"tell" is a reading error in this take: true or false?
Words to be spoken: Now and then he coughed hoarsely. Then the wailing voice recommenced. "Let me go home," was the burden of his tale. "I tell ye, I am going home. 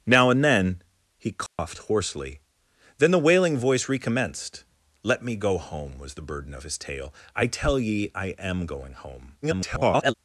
false